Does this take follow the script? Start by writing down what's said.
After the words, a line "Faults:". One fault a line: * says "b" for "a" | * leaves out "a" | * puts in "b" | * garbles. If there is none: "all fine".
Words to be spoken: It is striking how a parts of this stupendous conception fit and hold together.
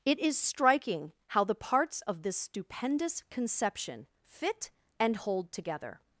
It is striking how the parts of this stupendous conception fit and hold together.
Faults:
* says "the" for "a"